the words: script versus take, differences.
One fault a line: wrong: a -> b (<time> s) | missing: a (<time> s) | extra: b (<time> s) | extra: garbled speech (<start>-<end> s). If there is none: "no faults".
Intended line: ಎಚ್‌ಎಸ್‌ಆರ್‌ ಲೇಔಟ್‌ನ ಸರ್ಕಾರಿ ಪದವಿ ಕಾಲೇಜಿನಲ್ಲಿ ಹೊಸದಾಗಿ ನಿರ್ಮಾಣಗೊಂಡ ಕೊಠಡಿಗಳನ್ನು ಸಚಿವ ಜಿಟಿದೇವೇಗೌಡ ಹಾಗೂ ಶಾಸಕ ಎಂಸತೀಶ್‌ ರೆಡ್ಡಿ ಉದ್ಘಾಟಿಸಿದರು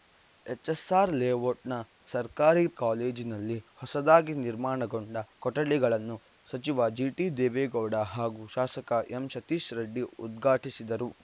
missing: ಪದವಿ (2.7 s)